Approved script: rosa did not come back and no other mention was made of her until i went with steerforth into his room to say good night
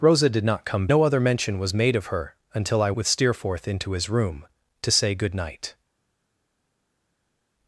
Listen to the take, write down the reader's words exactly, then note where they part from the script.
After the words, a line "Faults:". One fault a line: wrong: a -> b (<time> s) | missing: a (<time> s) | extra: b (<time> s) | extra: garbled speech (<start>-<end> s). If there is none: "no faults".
rosa did not come no other mention was made of her until i with steerforth into his room to say good night
Faults:
missing: back and (0.9 s)
missing: went (2.9 s)